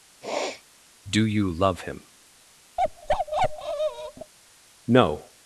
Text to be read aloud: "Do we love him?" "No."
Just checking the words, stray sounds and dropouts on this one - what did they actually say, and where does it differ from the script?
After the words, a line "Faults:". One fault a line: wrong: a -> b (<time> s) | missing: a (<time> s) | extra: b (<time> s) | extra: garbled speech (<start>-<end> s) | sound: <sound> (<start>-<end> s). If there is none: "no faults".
"Do you love him?" "No."
Faults:
sound: sniff (0.2-0.6 s)
wrong: we -> you (1.2 s)
sound: bark (2.8-4.3 s)